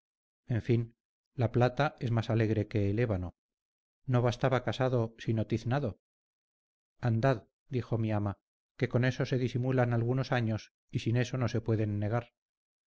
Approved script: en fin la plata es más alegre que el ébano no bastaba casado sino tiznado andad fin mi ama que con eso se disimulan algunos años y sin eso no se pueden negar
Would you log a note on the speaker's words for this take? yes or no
yes